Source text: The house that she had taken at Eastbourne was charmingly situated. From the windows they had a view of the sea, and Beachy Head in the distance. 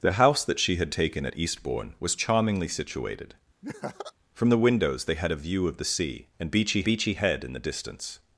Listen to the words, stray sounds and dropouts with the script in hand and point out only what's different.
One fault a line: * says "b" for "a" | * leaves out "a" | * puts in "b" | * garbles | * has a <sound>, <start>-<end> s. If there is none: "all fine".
* has a laugh, 3.6-4.1 s
* puts in "Beachy"